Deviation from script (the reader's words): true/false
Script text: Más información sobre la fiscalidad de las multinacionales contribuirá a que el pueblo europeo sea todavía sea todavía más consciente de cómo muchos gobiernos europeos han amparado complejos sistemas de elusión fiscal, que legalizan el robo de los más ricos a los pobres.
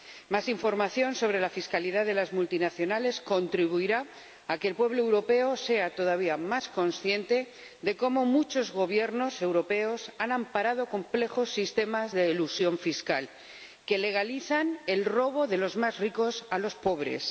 true